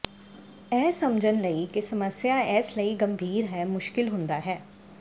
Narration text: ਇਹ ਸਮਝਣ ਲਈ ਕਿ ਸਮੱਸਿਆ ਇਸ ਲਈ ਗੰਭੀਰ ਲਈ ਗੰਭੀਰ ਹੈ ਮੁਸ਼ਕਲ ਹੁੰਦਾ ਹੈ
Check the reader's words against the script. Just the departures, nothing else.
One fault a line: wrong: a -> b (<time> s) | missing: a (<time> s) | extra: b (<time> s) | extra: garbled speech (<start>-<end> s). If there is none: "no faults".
missing: ਲਈ ਗੰਭੀਰ (3.5 s)